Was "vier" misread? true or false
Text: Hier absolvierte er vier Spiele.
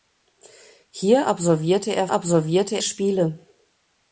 true